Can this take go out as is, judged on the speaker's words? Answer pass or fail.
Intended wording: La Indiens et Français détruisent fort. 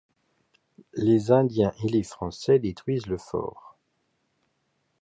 fail